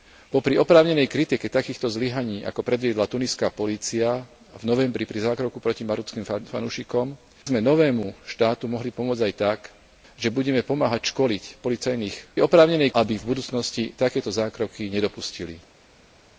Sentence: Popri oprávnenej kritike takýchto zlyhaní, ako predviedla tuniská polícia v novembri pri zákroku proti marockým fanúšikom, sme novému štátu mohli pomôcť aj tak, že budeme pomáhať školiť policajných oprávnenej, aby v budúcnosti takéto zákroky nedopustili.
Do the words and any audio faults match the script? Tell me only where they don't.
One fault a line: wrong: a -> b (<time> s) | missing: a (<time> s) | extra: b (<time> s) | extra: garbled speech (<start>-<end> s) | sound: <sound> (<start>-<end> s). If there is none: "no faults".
no faults